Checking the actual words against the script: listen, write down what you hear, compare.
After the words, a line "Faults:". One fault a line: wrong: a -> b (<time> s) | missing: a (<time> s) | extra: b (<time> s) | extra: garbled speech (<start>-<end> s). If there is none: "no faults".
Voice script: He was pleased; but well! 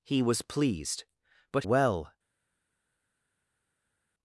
He was pleased; but well!
Faults:
no faults